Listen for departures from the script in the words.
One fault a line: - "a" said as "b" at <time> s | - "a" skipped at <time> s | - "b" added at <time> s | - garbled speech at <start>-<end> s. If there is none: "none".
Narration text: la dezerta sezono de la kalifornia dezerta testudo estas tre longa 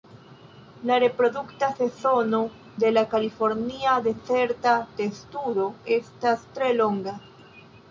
- "dezerta" said as "reprodukta" at 1.0 s